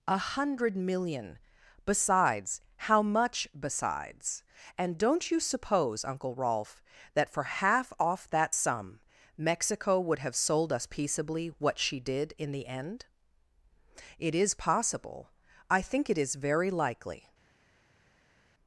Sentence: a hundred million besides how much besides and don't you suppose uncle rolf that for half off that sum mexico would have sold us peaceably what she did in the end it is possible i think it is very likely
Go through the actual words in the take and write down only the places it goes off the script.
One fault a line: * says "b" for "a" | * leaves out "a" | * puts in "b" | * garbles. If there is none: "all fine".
all fine